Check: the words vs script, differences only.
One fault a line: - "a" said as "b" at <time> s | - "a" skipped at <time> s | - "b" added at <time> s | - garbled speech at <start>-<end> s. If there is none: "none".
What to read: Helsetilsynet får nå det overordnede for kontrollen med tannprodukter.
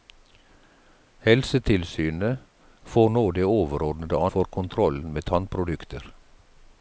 none